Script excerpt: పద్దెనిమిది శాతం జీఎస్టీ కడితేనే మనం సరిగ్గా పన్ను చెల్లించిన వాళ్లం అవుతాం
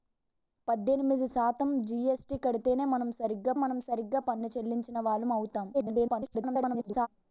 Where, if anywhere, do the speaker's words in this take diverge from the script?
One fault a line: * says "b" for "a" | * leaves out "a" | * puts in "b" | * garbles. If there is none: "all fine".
* puts in "మనం సరిగ్గా"
* garbles